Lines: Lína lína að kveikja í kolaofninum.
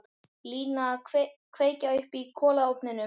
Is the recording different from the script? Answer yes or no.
yes